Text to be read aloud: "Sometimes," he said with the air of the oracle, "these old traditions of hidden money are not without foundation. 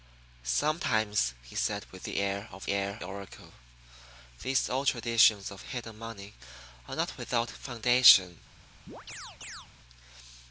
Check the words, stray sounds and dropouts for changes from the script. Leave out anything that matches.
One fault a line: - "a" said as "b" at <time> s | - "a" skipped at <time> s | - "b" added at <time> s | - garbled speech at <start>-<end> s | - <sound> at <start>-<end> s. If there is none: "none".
- "the" said as "air" at 2.7 s
- chirp at 8.9-9.7 s